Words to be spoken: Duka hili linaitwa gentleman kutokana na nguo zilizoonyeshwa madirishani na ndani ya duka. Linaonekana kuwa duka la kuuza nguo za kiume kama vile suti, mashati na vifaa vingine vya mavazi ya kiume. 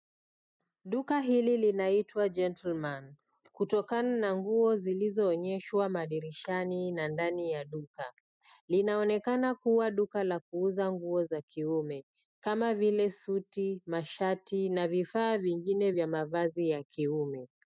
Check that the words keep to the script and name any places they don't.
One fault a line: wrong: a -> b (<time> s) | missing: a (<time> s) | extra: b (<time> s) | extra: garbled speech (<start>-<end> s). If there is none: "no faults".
no faults